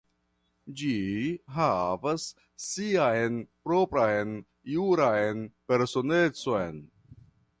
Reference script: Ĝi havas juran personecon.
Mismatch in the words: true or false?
true